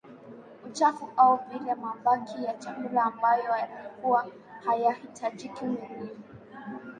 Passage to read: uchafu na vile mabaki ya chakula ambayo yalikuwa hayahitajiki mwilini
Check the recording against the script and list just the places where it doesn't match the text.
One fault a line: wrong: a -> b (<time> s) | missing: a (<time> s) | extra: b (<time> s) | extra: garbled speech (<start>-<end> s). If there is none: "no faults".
wrong: na -> au (1.2 s)